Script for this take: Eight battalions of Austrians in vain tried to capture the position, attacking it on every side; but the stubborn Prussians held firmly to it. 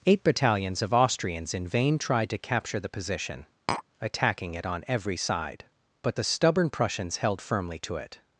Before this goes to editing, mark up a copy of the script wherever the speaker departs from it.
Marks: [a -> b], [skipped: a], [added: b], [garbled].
Eight battalions of Austrians in vain tried to capture the position, attacking it on every side; but the stubborn Prussians held firmly to it.